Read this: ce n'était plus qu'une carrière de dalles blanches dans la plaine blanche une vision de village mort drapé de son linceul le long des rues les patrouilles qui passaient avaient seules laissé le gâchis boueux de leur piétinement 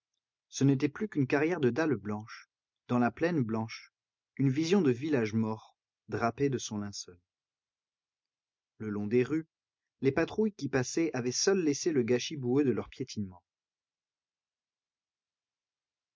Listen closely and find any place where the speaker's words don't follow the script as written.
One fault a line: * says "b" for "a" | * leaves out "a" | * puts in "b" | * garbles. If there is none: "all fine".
all fine